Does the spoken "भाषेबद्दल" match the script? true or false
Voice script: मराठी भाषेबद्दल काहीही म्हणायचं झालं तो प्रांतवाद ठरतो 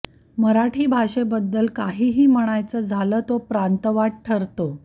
true